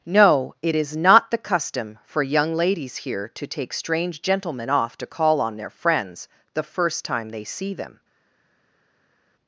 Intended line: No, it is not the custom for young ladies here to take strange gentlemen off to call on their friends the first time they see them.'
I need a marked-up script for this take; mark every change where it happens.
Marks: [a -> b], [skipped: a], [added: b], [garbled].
No, it is not the custom for young ladies here to take strange gentlemen off to call on their friends the first time they see them.'